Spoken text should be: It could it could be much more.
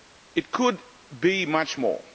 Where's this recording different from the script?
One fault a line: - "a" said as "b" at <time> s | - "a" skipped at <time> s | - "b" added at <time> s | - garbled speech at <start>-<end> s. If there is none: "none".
- "it could" skipped at 0.8 s